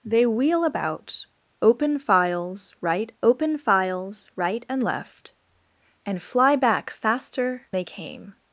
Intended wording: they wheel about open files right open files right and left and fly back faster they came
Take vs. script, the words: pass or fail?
pass